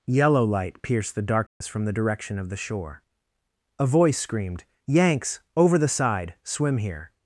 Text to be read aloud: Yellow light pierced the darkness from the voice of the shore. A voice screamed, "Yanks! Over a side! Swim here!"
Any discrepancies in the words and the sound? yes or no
yes